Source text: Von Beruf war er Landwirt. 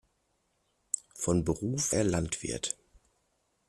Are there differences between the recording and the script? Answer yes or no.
yes